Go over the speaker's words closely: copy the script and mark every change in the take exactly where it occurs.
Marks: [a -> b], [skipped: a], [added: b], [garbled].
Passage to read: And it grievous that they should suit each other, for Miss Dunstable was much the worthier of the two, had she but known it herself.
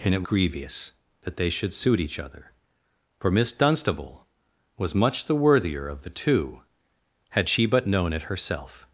And it grievous that they should suit each other, for Miss Dunstable was much the worthier of the two, had she but known it herself.